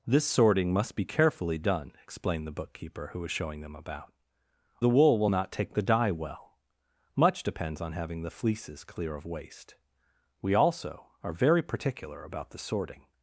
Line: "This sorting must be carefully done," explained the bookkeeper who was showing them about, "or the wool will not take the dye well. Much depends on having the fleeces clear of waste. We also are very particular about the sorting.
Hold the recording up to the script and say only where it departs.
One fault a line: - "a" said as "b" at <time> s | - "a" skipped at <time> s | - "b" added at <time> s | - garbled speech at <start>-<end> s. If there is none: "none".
- "or" skipped at 4.1 s